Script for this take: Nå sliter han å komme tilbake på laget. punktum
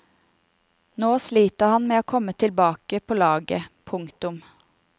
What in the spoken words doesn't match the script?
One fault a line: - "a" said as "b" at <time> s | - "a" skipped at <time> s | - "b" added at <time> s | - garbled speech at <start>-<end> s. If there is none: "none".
- "med" added at 1.9 s